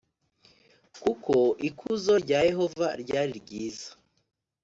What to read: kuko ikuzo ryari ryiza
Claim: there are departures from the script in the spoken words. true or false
true